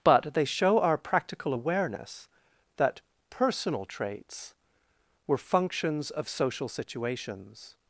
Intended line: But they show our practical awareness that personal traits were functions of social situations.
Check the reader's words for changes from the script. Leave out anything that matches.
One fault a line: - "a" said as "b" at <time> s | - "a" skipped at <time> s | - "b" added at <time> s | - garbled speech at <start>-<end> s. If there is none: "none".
none